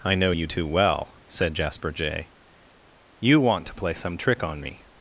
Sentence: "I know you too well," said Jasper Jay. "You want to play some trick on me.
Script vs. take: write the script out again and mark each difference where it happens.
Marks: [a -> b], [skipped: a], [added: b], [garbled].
"I know you too well," said Jasper Jay. "You want to play some trick on me.